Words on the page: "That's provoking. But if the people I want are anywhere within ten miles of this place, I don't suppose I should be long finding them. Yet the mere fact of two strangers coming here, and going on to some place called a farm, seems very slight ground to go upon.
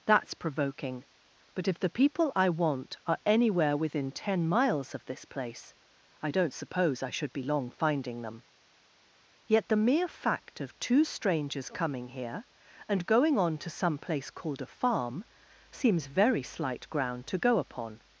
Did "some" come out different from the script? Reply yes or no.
no